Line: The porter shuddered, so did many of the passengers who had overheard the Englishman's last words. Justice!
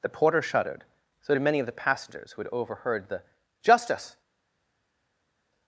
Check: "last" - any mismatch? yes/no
yes